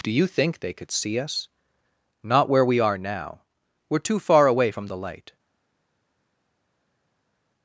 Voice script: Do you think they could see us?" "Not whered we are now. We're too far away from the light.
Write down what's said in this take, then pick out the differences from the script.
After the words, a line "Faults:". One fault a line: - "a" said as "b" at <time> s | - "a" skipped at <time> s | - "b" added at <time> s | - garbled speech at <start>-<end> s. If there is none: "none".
Do you think they could see us?" "Not where we are now. We're too far away from the light.
Faults:
- "whered" said as "where" at 2.5 s